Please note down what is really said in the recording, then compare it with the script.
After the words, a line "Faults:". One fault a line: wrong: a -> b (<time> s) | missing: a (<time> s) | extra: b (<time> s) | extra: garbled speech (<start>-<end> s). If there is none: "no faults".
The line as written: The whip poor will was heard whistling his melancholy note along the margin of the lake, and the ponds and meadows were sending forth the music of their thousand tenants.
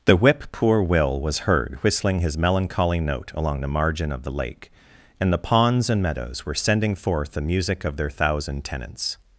The whip poor will was heard whistling his melancholy note along the margin of the lake, and the ponds and meadows were sending forth the music of their thousand tenants.
Faults:
no faults